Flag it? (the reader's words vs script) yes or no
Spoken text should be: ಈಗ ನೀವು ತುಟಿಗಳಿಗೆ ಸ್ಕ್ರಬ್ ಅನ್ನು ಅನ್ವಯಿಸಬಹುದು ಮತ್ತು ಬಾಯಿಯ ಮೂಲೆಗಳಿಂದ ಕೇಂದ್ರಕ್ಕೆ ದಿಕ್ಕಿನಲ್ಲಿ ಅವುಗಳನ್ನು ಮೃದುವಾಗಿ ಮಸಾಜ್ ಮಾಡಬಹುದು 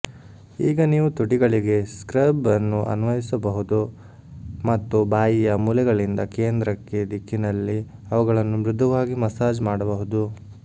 no